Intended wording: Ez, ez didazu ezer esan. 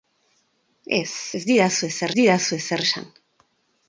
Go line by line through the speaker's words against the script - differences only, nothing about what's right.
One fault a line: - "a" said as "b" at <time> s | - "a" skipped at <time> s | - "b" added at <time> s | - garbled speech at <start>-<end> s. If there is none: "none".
- "didazu ezer" added at 2.2 s